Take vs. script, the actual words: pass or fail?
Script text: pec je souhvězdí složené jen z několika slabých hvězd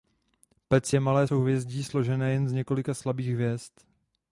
fail